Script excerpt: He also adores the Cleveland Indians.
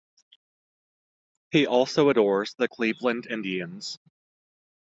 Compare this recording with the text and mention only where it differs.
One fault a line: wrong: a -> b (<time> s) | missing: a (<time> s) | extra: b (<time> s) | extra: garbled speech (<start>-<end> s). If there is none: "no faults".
no faults